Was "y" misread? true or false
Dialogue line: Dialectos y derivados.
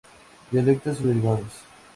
false